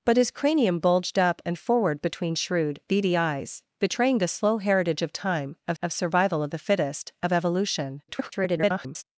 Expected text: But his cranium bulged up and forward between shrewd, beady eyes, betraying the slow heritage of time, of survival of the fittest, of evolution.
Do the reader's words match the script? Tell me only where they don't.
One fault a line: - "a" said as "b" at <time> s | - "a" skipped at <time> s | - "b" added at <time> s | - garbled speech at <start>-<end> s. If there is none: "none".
- "of" added at 5.8 s
- garbled speech at 8.1-9.0 s